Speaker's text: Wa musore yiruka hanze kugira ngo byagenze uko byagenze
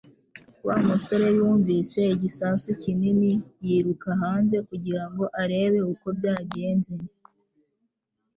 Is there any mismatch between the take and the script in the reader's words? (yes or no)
yes